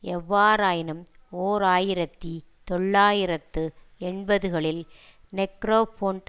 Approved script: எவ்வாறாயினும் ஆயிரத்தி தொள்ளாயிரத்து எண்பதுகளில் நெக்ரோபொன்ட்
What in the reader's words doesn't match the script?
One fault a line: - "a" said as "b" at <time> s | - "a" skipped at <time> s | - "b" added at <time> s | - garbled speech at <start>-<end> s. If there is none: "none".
- "ஓர்" added at 1.3 s